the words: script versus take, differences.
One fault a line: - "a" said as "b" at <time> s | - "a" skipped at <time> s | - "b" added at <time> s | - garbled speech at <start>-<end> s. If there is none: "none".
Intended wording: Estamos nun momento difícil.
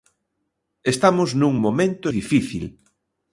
none